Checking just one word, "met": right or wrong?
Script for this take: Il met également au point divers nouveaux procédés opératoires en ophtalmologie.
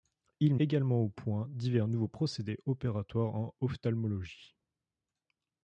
wrong